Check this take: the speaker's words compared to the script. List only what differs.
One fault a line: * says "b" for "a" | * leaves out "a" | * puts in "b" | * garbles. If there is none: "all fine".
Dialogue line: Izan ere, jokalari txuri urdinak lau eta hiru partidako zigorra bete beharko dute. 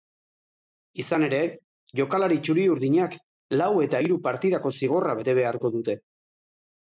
all fine